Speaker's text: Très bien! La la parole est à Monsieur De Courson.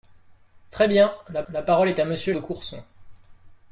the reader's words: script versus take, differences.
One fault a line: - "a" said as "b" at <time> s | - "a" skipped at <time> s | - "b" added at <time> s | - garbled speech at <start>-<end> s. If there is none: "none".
none